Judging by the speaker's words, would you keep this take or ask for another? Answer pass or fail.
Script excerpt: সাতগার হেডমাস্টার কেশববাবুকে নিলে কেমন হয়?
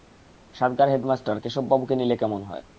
pass